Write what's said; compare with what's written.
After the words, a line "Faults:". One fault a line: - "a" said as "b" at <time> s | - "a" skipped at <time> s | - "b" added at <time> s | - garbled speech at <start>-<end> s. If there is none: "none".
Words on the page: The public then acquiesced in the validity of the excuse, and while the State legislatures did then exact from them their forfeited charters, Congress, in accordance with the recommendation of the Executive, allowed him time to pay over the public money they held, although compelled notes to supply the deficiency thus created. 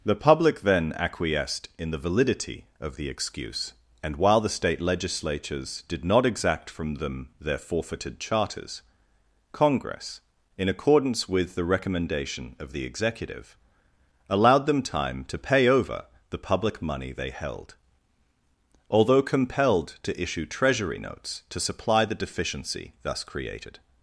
The public then acquiesced in the validity of the excuse, and while the State legislatures did not exact from them their forfeited charters, Congress, in accordance with the recommendation of the Executive, allowed them time to pay over the public money they held, although compelled to issue Treasury notes to supply the deficiency thus created.
Faults:
- "then" said as "not" at 6.0 s
- "him" said as "them" at 14.7 s
- "to issue Treasury" added at 20.0 s